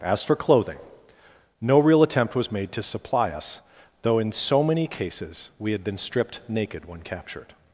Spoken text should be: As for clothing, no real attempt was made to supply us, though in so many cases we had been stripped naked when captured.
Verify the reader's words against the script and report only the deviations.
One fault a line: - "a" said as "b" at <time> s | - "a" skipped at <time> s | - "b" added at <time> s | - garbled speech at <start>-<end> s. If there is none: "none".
none